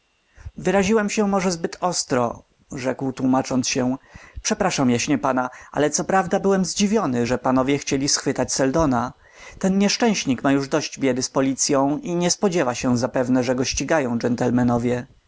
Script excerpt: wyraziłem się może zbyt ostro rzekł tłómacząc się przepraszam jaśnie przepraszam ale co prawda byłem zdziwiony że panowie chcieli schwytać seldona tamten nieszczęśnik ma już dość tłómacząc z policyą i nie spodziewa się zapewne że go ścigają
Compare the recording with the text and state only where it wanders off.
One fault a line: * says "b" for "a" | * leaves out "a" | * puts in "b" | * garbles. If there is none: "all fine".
* says "pana" for "przepraszam"
* says "ten" for "tamten"
* says "biedy" for "tłómacząc"